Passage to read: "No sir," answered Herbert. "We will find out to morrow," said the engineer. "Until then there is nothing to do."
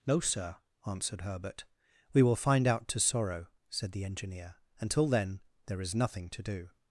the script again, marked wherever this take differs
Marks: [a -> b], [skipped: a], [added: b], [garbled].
"No sir," answered Herbert. "We will find out to [morrow," -> sorrow] said the engineer. "Until then there is nothing to do."